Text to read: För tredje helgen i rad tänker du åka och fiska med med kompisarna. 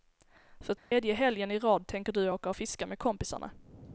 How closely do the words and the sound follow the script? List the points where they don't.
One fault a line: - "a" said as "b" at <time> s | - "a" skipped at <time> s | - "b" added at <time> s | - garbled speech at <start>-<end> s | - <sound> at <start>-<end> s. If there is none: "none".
- dropout at 0.8-0.9 s
- "med" skipped at 3.0 s